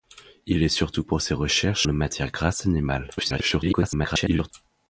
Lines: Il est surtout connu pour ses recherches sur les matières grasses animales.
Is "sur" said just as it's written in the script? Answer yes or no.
no